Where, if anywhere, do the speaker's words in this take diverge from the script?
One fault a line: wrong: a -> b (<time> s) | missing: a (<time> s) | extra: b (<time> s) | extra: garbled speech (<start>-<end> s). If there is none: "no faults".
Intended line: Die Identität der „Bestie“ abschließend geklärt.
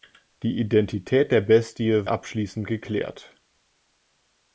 no faults